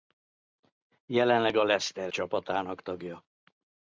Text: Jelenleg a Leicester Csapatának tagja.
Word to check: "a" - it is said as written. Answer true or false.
true